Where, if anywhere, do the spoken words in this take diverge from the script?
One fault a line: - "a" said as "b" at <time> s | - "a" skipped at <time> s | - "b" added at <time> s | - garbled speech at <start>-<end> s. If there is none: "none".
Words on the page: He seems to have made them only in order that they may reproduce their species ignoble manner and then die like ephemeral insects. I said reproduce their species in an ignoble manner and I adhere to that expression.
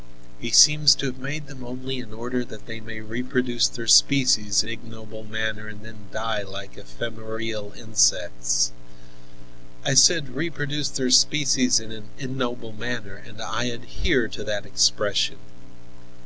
none